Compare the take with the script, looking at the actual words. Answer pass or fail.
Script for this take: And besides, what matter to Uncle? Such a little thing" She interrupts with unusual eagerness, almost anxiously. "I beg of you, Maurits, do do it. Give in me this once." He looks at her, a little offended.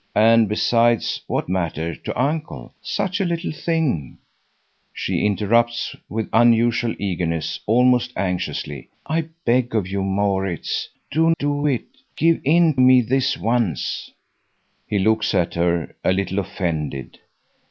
pass